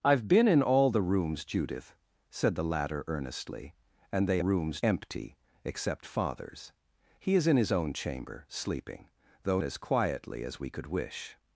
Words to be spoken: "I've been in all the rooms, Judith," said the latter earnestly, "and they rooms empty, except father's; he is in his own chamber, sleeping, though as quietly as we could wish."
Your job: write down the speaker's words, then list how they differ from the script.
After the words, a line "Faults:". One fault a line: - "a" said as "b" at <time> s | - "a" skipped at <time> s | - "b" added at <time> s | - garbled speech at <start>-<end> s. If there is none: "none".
"I've been in all the rooms, Judith," said the latter earnestly, "and they rooms empty, except father's; he is in his own chamber, sleeping, though as quietly as we could wish."
Faults:
none